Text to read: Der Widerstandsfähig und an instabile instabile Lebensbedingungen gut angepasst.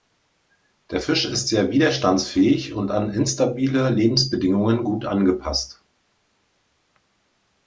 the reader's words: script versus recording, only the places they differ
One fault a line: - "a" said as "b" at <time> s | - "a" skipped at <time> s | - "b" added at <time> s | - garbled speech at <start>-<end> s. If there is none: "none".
- "Fisch ist sehr" added at 1.0 s
- "instabile" skipped at 3.9 s